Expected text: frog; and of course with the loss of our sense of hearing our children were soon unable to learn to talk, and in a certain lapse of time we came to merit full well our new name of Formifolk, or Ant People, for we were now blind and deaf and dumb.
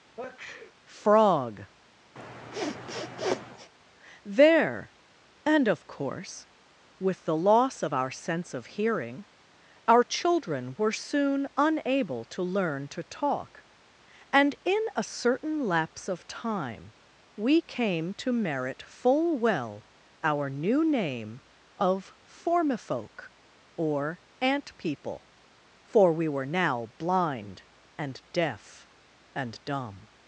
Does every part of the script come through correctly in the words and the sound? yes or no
no